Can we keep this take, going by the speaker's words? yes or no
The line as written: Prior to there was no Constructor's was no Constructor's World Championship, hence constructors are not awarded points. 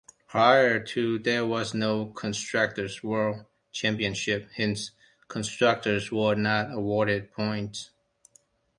no